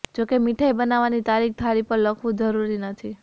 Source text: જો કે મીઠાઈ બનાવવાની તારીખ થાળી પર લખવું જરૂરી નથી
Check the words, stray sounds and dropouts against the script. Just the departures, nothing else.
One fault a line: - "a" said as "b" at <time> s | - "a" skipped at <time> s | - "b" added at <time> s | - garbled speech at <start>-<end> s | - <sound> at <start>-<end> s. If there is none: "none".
none